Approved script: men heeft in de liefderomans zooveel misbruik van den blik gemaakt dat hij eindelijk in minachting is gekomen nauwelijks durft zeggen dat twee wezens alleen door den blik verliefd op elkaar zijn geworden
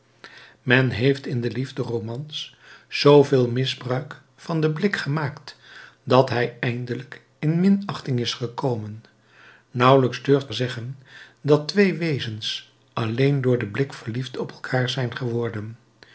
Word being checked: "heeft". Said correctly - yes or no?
yes